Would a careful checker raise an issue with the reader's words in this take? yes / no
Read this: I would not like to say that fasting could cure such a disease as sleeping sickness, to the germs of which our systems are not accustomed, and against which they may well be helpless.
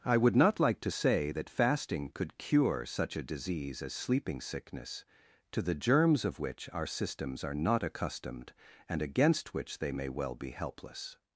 no